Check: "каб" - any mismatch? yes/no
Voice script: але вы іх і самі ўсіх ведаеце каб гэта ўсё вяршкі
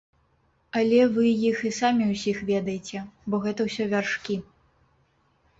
yes